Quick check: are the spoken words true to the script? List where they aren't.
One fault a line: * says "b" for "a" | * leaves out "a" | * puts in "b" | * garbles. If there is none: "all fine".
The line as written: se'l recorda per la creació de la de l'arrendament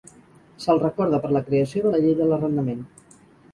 * puts in "llei"